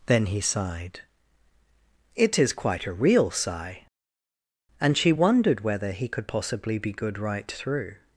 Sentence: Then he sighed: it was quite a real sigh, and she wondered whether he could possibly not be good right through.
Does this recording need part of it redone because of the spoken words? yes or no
yes